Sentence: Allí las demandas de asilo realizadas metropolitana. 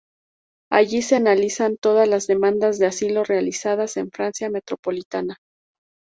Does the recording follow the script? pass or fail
fail